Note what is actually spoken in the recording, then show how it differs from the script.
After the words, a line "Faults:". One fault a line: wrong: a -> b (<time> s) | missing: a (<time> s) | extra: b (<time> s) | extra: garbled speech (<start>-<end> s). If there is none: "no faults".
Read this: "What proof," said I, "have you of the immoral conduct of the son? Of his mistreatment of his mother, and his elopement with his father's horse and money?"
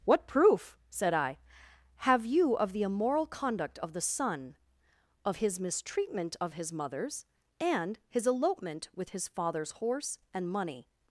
"What proof," said I, "have you of the immoral conduct of the son? Of his mistreatment of his mothers, and his elopement with his father's horse and money?"
Faults:
wrong: mother -> mothers (6.7 s)